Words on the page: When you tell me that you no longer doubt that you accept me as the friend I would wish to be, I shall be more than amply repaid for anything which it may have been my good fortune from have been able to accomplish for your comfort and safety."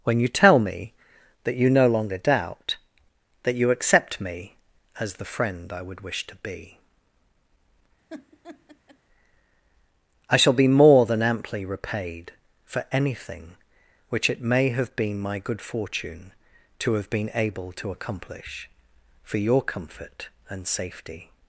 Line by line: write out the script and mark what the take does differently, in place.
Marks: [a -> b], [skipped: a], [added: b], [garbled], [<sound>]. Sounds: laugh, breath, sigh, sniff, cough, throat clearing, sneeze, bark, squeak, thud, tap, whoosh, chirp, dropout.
When you tell me that you no longer doubt that you accept me as the friend I would wish to be, [laugh] I shall be more than amply repaid for anything which it may have been my good fortune [from -> to] have been able to accomplish for your comfort and safety."